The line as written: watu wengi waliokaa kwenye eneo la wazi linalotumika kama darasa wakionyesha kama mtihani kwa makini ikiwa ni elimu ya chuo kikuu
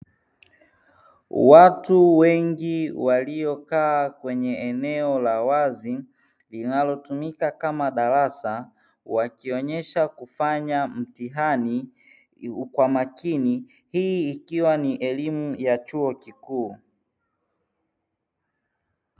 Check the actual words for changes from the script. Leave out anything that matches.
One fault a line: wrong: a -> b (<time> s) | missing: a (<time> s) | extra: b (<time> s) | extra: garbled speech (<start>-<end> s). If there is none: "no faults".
wrong: kama -> kufanya (10.1 s)
extra: hii (13.9 s)